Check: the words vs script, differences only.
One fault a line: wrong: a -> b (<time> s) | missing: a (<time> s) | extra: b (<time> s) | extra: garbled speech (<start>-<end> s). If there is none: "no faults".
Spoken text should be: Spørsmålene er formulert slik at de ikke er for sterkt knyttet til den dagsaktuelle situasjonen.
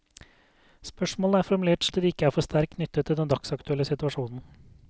missing: slik (1.9 s)